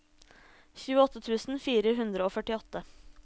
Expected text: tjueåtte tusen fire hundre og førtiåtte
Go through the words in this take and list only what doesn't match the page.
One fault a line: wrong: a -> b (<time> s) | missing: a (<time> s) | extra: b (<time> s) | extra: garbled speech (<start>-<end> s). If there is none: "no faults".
no faults